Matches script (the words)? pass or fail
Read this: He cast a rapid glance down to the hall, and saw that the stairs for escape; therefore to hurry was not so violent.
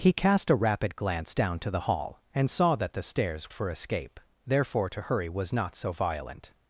pass